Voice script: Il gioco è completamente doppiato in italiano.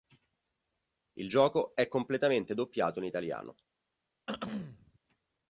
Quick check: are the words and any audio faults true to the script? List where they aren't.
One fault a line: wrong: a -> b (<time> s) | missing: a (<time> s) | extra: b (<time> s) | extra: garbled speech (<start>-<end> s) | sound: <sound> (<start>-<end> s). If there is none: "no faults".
sound: throat clearing (4.3-5.0 s)